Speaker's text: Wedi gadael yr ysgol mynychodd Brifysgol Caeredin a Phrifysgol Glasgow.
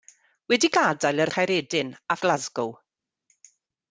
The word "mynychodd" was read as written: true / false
false